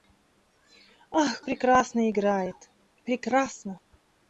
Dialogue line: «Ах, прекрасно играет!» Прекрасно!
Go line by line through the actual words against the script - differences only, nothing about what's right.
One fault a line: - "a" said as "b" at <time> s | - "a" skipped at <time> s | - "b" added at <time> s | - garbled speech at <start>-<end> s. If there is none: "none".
none